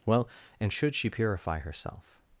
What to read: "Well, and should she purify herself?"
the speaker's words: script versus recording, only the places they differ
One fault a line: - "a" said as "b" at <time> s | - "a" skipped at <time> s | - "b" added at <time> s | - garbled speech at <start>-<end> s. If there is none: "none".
none